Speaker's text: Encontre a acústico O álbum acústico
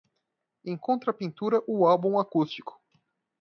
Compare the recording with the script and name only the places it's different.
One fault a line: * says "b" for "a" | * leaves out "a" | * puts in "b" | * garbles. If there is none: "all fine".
* says "pintura" for "acústico"